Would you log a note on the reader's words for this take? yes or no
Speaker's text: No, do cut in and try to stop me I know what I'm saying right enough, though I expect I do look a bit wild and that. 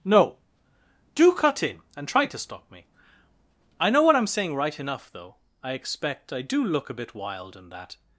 no